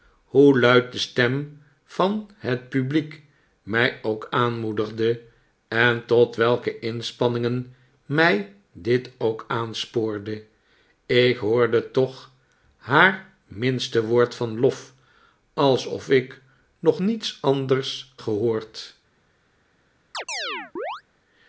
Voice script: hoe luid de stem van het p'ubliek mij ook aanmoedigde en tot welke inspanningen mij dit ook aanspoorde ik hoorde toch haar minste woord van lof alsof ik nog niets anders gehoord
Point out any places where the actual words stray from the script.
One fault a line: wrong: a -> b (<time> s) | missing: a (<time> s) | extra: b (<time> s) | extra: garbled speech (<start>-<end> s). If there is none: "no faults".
no faults